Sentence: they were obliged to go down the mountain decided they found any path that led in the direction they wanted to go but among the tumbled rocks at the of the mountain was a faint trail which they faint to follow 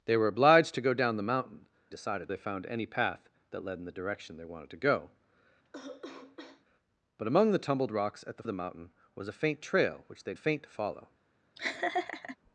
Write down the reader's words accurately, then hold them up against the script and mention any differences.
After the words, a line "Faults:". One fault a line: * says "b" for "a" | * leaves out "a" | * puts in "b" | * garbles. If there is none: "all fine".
they were obliged to go down the mountain decided they found any path that led in the direction they wanted to go but among the tumbled rocks at the of the mountain was a faint trail which they faint to follow
Faults:
all fine